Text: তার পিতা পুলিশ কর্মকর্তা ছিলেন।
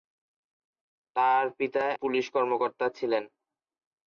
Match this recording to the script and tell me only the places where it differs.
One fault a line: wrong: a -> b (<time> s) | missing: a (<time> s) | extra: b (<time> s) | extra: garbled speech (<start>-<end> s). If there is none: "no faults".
no faults